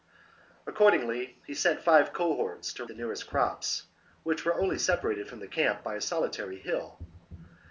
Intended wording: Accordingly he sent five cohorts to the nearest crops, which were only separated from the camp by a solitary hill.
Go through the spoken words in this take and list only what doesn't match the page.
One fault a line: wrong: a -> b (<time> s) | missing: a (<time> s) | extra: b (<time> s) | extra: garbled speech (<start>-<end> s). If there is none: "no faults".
no faults